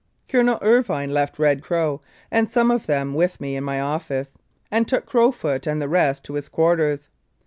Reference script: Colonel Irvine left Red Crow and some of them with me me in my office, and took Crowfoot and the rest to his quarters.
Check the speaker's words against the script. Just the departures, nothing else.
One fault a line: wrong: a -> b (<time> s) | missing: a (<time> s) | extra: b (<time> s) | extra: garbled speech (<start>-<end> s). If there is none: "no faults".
missing: me (3.6 s)